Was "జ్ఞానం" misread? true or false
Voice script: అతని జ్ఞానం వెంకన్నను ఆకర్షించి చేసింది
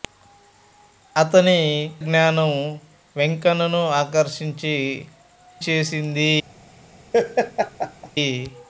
false